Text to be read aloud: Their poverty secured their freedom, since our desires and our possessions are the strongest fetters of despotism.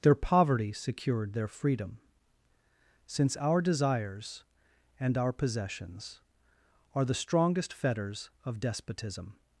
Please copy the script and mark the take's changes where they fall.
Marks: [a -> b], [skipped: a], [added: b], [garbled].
Their poverty secured their freedom, since our desires and our possessions are the strongest fetters of despotism.